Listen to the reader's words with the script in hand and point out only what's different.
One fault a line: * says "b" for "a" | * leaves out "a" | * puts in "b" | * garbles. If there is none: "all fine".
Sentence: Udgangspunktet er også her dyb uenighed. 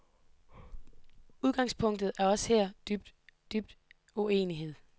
* puts in "dyb"